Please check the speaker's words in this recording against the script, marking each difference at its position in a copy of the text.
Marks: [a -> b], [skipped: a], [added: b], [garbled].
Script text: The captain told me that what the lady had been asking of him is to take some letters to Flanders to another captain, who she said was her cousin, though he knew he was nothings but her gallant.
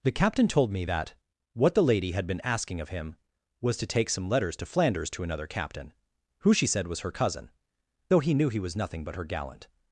The captain told me that what the lady had been asking of him [is -> was] to take some letters to Flanders to another captain, who she said was her cousin, though he knew he was [nothings -> nothing] but her gallant.